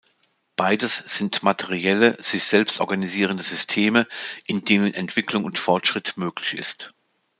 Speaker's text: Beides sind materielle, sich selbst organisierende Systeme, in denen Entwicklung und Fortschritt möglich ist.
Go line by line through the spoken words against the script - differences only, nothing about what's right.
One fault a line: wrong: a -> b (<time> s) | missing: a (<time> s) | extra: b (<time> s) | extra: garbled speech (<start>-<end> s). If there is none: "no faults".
no faults